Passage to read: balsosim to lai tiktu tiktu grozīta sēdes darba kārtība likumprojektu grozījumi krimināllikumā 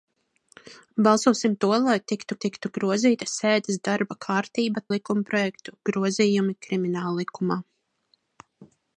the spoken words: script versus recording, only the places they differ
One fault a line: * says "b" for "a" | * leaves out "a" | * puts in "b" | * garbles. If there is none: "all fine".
all fine